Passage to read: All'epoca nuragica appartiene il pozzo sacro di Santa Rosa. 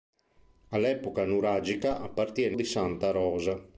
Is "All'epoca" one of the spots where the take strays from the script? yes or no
no